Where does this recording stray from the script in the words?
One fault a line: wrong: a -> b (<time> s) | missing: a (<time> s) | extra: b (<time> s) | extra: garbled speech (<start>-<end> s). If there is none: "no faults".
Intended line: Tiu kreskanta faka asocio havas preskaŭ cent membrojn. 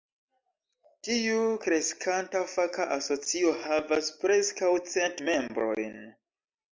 no faults